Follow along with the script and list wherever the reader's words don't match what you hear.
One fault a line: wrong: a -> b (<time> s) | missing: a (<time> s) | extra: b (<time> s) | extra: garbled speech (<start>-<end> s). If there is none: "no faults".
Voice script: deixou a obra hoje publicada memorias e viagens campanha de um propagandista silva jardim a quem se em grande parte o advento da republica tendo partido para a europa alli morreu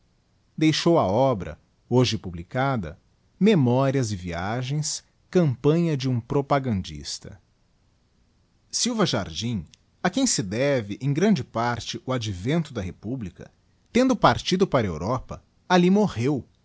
extra: deve (10.4 s)